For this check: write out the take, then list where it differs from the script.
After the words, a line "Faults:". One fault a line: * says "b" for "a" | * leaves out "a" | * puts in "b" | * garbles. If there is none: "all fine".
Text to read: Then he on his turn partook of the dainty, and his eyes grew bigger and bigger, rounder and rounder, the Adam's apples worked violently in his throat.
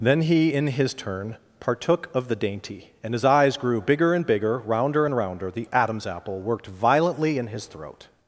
Then he in his turn partook of the dainty, and his eyes grew bigger and bigger, rounder and rounder, the Adam's apple worked violently in his throat.
Faults:
* says "in" for "on"
* says "apple" for "apples"